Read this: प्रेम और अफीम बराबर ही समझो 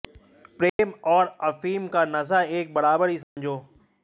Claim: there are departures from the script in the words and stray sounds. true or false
true